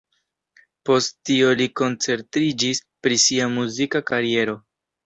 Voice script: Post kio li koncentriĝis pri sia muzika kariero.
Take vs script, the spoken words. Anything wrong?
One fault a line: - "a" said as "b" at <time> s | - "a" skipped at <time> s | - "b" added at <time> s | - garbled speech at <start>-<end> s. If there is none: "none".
- "kio" said as "tio" at 1.3 s